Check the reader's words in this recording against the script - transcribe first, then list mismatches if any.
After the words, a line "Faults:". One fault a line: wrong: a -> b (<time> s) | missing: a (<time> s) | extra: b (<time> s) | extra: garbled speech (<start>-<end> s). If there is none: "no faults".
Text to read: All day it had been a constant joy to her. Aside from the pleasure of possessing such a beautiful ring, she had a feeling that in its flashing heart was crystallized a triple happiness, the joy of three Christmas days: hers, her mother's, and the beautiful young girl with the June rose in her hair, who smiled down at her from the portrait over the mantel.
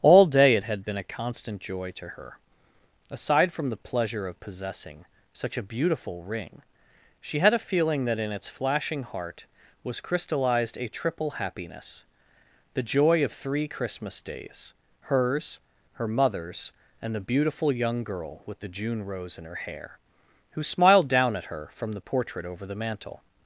All day it had been a constant joy to her. Aside from the pleasure of possessing such a beautiful ring, she had a feeling that in its flashing heart was crystallized a triple happiness, the joy of three Christmas days: hers, her mother's, and the beautiful young girl with the June rose in her hair, who smiled down at her from the portrait over the mantel.
Faults:
no faults